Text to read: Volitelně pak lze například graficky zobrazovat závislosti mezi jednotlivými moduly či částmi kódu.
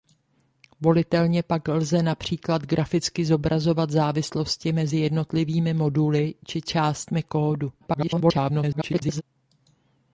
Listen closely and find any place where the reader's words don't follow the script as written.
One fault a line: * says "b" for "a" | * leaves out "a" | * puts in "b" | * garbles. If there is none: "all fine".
* garbles